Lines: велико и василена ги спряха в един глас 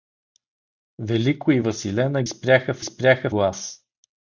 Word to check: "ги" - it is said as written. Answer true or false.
false